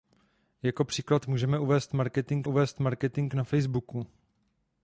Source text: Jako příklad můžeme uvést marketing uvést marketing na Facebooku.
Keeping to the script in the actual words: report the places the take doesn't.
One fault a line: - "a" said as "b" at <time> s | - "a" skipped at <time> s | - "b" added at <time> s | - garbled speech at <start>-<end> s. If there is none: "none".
none